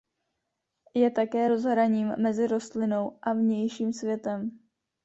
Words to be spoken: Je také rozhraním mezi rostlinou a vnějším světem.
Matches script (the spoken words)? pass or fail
pass